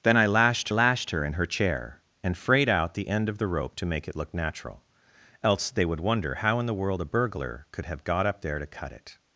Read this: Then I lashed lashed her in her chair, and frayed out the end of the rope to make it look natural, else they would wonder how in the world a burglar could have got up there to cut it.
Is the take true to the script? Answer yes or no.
yes